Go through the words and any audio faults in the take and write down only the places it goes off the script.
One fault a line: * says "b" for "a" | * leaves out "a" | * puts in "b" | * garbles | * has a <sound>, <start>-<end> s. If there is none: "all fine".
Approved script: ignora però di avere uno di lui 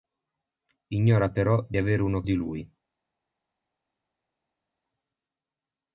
all fine